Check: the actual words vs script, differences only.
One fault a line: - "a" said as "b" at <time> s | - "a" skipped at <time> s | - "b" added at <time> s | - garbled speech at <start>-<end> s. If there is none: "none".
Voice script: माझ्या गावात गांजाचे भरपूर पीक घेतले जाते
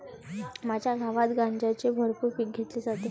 none